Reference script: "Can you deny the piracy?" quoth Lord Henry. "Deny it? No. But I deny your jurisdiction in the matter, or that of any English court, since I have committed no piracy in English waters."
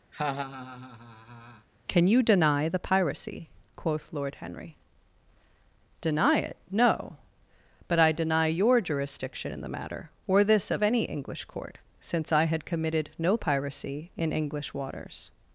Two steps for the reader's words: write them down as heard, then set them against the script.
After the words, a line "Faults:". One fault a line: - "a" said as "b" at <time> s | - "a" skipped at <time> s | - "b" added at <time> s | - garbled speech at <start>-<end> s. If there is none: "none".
"Can you deny the piracy?" quoth Lord Henry. "Deny it? No. But I deny your jurisdiction in the matter, or this of any English court, since I had committed no piracy in English waters."
Faults:
- "that" said as "this" at 10.4 s
- "have" said as "had" at 12.4 s